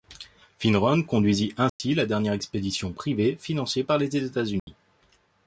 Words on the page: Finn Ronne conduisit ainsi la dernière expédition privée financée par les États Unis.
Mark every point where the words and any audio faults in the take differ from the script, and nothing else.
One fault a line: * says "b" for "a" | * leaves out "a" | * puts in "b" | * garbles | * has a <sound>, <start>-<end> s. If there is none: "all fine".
* has a dropout, 1.7-1.8 s
* has a dropout, 4.6-4.7 s